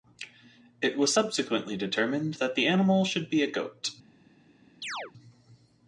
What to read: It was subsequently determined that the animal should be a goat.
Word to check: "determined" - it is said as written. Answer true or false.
true